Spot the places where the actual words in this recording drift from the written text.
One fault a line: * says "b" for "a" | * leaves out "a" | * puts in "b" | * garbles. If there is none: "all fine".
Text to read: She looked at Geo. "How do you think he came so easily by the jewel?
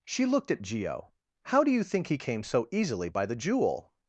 all fine